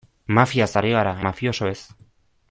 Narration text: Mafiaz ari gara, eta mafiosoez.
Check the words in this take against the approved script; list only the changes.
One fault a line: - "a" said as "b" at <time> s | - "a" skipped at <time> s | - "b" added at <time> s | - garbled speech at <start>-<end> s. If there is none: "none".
- "eta" skipped at 1.1 s